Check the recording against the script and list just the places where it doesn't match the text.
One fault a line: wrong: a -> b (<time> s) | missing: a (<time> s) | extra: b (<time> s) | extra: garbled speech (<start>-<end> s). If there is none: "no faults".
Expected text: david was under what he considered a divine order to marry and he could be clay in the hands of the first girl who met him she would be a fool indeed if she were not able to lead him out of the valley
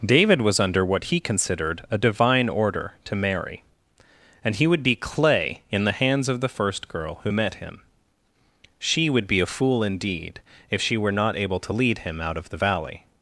wrong: could -> would (4.7 s)